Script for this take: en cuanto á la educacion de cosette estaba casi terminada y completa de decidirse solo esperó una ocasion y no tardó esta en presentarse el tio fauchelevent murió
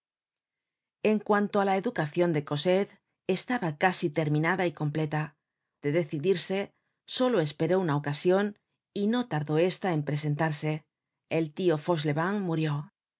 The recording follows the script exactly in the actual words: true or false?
true